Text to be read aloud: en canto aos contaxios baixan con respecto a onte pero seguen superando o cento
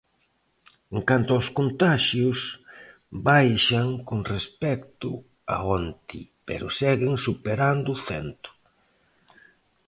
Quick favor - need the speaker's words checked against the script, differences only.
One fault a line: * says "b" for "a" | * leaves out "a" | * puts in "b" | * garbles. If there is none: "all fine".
all fine